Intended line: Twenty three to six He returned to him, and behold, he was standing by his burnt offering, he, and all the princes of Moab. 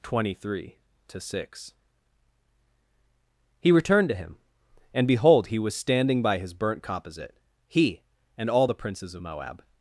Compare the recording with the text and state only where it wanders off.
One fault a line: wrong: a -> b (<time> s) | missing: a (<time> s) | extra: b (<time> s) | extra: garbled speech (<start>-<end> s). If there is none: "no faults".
wrong: offering -> composite (6.8 s)